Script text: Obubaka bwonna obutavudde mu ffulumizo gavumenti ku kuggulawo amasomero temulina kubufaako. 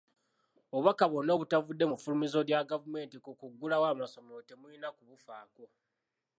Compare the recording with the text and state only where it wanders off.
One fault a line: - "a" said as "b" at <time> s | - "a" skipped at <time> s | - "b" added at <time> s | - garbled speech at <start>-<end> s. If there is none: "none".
- "lya" added at 2.5 s